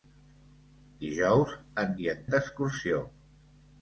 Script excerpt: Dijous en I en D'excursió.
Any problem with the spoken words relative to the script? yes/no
no